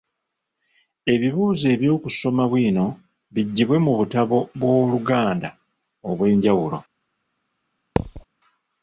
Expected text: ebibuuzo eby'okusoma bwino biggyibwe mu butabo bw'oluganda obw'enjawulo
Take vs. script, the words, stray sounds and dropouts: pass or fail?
fail